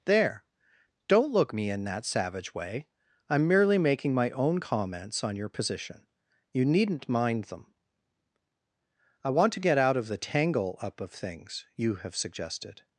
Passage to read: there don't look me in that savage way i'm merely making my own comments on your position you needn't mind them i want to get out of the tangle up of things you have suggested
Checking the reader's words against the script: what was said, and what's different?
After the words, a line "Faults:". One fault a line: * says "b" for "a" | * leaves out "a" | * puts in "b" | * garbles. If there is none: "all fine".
there don't look me in that savage way i'm merely making my own comments on your position you needn't mind them i want to get out of the tangle up of things you have suggested
Faults:
all fine